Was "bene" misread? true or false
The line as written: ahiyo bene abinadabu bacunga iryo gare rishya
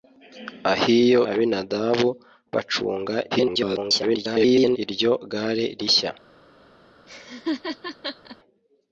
true